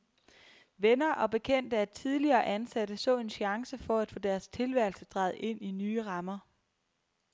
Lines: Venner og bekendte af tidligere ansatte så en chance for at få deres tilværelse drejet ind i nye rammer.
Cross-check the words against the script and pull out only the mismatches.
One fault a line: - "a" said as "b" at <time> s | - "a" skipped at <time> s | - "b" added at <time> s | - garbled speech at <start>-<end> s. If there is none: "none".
none